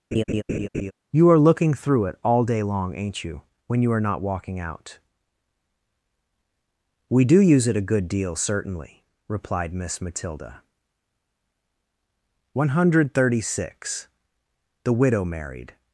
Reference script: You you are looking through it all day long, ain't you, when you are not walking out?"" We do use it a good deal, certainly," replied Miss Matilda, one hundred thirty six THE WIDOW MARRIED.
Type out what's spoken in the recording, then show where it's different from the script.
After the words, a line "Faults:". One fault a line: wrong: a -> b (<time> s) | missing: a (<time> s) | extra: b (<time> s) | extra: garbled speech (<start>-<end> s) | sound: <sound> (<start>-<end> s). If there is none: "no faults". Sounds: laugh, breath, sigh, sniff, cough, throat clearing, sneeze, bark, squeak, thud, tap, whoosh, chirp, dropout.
You are looking through it all day long, ain't you, when you are not walking out?"" We do use it a good deal, certainly," replied Miss Matilda, one hundred thirty six THE WIDOW MARRIED.
Faults:
sound: laugh (0.1-0.9 s)
missing: you (1.3 s)